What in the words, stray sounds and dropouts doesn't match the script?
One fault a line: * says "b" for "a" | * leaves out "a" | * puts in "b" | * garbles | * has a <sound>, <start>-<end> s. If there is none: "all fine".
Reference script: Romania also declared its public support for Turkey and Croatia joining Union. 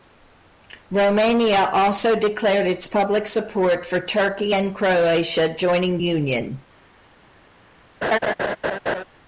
* has a laugh, 8.0-9.0 s